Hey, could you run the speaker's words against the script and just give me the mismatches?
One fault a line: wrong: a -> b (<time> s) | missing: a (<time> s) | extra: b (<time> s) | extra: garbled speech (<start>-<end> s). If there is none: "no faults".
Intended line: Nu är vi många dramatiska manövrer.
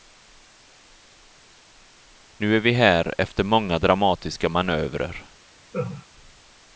extra: här efter (2.7 s)